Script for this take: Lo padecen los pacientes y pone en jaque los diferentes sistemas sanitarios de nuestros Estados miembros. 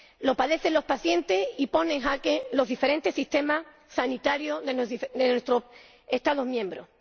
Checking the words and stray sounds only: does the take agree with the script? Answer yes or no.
yes